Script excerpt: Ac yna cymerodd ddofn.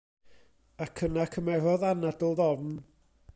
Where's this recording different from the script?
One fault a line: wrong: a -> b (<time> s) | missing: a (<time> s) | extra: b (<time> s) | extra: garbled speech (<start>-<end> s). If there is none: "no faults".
extra: anadl (1.9 s)